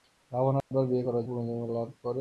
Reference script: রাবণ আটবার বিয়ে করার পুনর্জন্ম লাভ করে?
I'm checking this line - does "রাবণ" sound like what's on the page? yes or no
yes